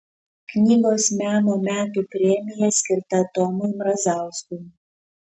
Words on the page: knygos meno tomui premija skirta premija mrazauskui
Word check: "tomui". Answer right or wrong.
wrong